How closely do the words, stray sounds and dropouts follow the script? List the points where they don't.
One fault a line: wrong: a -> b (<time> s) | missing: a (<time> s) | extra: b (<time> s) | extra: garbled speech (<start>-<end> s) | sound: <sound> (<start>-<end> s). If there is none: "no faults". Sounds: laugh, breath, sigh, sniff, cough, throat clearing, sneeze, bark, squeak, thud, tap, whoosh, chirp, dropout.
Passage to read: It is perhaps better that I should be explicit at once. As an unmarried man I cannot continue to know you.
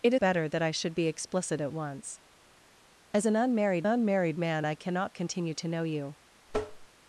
missing: is perhaps (0.1 s)
extra: unmarried (3.8 s)
sound: tap (6.5-6.9 s)